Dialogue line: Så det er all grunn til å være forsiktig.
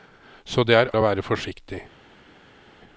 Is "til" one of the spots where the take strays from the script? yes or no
yes